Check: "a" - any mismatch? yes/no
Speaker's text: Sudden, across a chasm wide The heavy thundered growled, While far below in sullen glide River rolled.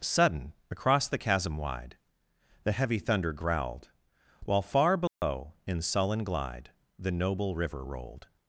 yes